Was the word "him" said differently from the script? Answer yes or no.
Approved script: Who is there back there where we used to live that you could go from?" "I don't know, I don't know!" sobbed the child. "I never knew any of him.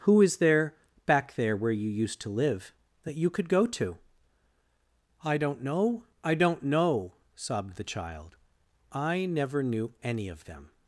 yes